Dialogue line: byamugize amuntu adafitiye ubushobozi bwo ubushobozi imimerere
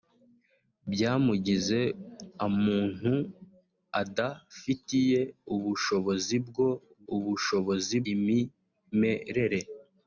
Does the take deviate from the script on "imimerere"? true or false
false